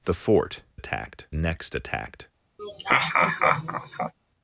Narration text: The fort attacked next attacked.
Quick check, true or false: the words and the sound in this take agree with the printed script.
false